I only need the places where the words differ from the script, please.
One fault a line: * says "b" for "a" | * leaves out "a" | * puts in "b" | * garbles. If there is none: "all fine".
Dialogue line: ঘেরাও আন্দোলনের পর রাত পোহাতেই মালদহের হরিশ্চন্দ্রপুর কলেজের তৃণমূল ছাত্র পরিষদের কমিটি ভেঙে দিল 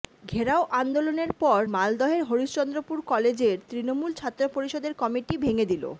* leaves out "রাত পোহাতেই"